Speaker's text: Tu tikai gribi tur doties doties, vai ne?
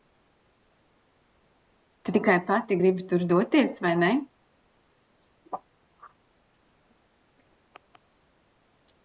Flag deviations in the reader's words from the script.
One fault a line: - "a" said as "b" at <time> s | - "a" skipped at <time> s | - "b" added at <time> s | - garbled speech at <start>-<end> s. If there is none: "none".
- "pati" added at 2.5 s
- "doties" skipped at 3.7 s